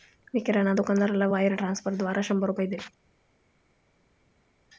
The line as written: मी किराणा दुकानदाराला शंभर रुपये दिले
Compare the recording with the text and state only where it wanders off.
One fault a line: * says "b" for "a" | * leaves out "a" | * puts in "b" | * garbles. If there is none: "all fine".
* puts in "वायर ट्रान्स्फरद्वारा"